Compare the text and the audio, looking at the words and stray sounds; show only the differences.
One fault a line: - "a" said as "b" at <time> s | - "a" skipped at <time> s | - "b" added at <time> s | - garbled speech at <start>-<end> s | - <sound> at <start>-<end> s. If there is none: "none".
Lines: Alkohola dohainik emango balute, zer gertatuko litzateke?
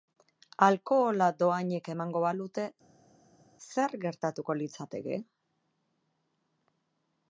none